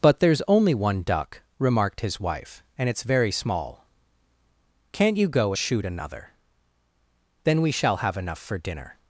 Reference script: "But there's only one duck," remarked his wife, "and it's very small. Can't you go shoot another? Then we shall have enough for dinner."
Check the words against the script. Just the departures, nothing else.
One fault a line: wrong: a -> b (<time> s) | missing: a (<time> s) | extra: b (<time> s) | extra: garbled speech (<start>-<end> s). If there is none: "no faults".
no faults